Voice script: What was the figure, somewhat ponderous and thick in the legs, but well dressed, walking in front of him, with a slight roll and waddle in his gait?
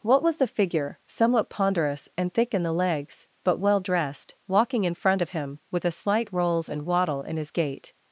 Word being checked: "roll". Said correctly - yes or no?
no